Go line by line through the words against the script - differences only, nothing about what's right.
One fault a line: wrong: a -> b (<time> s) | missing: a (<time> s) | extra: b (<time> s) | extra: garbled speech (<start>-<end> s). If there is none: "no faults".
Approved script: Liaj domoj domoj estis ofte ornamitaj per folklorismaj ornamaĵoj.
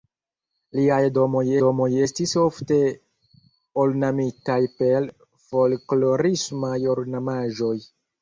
no faults